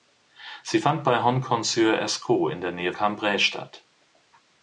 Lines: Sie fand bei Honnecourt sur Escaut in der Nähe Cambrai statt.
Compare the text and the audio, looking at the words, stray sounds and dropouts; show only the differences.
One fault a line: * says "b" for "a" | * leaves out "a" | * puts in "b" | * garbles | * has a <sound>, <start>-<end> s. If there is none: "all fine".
all fine